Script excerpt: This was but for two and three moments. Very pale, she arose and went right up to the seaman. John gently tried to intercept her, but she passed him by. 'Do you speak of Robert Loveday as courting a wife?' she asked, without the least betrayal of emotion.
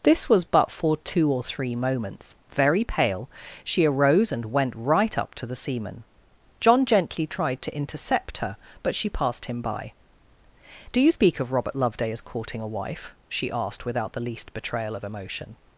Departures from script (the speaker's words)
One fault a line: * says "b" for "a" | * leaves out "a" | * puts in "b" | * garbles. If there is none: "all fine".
* says "or" for "and"